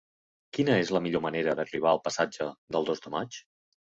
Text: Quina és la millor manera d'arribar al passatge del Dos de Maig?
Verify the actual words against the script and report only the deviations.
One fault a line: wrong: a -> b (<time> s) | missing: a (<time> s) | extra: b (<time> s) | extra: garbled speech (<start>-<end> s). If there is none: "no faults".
no faults